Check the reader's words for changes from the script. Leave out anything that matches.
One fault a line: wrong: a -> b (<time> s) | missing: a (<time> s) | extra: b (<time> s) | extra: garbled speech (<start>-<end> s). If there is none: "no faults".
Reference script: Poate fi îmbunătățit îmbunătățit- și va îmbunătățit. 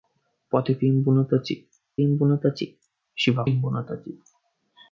no faults